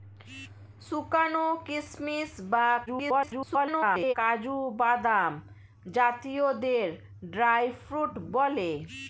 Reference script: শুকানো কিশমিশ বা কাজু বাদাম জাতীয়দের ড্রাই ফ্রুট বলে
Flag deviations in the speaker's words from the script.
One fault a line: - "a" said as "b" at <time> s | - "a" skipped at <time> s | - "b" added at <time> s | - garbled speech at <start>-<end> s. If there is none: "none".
- garbled speech at 2.9-4.1 s